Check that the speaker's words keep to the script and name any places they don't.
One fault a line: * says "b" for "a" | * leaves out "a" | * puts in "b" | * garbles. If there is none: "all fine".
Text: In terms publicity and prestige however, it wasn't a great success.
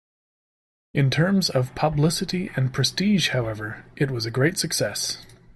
* puts in "of"
* says "was" for "wasn't"